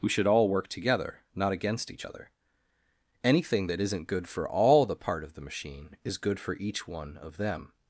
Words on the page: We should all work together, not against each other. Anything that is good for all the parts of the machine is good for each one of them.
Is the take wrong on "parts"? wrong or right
wrong